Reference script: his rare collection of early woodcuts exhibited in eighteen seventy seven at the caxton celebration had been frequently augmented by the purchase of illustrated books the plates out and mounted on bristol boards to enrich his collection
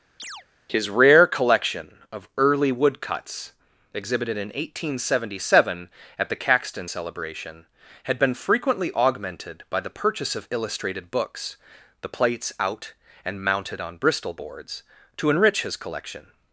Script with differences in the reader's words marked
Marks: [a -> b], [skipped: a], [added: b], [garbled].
his rare collection of early woodcuts exhibited in eighteen seventy seven at the caxton celebration had been frequently augmented by the purchase of illustrated books the plates out and mounted on bristol boards to enrich his collection